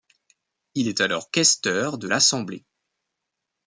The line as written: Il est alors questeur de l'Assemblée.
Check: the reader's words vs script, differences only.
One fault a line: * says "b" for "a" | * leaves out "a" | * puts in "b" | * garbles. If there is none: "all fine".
all fine